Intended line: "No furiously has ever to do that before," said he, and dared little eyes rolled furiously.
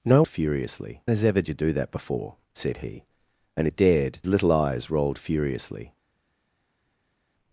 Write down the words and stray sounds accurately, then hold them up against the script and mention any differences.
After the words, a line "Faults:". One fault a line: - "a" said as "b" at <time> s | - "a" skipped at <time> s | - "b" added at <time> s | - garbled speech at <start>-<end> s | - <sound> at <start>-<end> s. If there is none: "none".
"No furiously has ever to do that before," said he, and dared little eyes rolled furiously.
Faults:
none